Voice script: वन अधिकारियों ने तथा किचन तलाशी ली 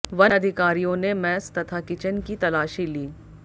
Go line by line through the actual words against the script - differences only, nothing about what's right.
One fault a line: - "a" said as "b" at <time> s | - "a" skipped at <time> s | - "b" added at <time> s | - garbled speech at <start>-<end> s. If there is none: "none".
- "मैस" added at 1.1 s
- "की" added at 2.2 s